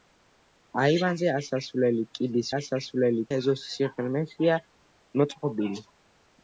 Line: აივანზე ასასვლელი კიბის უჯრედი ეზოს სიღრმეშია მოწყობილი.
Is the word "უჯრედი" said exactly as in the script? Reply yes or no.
no